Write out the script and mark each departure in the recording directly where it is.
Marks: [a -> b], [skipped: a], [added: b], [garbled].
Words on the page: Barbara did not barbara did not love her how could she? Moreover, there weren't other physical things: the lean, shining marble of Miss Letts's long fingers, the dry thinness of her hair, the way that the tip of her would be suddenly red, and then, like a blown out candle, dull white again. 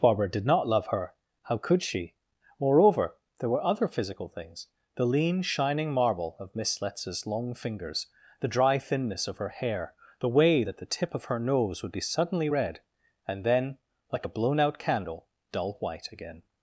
Barbara did not [skipped: barbara did not] love her how could she? Moreover, there [weren't -> were] other physical things: the lean, shining marble of Miss Letts's long fingers, the dry thinness of her hair, the way that the tip of her [added: nose] would be suddenly red, and then, like a blown out candle, dull white again.